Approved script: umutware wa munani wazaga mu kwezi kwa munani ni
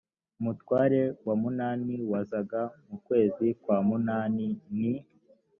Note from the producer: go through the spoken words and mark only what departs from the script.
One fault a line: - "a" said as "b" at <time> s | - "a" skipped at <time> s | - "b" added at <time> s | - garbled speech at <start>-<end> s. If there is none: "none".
none